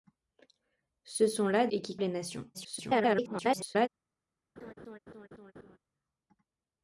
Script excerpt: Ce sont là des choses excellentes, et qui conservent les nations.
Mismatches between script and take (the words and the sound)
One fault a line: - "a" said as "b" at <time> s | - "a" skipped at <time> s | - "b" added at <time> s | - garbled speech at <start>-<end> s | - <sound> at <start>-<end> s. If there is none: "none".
- "des choses excellentes" skipped at 1.7 s
- "conservent" skipped at 2.0 s
- garbled speech at 2.5-3.9 s
- laugh at 4.6-5.8 s